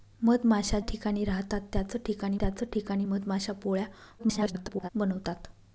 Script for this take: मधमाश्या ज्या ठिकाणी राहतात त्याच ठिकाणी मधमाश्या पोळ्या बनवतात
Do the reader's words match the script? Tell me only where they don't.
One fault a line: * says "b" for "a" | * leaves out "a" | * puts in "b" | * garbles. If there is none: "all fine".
* leaves out "ज्या"
* puts in "त्याच ठिकाणी"
* garbles